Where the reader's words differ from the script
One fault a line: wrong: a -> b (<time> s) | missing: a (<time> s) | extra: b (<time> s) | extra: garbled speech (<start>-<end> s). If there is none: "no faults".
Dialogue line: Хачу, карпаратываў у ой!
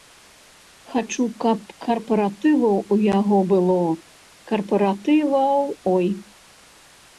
extra: каб (1.4 s)
extra: яго было карпаратываў (3.2 s)